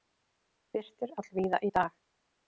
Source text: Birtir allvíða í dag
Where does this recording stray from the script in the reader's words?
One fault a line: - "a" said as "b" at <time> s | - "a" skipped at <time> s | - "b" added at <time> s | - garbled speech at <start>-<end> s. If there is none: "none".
none